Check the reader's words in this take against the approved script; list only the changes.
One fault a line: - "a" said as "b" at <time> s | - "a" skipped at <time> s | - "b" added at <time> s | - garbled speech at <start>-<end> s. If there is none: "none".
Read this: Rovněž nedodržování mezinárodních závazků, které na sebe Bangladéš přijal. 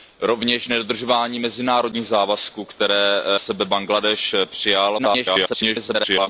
- "na" skipped at 3.2 s
- garbled speech at 5.0-6.3 s